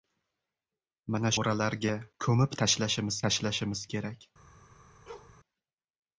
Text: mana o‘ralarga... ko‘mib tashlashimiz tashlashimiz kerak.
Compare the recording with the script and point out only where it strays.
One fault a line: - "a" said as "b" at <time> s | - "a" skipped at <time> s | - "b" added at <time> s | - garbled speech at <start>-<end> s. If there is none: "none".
none